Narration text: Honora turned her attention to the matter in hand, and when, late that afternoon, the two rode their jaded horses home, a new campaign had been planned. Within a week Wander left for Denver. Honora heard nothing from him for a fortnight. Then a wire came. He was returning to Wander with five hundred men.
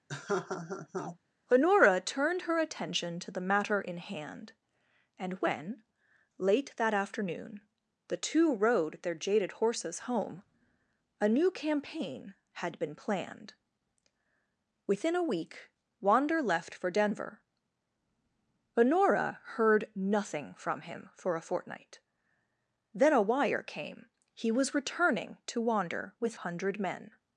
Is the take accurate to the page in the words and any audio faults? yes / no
no